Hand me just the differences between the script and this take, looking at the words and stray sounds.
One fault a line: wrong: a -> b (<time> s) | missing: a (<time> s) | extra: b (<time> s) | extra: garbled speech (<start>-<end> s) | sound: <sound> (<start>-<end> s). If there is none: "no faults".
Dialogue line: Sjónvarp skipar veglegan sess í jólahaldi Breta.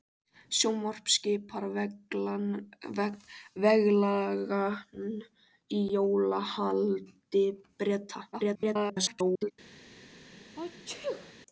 missing: sess (4.9 s)
extra: garbled speech (8.3-9.5 s)
sound: sneeze (10.6-11.3 s)